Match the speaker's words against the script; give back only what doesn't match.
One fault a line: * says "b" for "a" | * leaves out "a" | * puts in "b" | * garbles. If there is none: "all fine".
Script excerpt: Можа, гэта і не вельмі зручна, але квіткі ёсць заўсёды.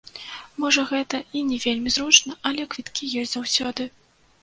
all fine